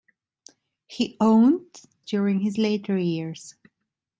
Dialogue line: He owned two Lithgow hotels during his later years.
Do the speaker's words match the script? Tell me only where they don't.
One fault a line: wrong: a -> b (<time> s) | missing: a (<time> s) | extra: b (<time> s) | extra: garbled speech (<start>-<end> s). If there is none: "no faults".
missing: two Lithgow hotels (1.8 s)